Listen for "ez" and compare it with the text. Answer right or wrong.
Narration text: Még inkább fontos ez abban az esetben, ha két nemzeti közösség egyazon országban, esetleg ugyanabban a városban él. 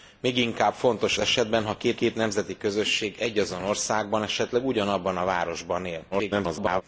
wrong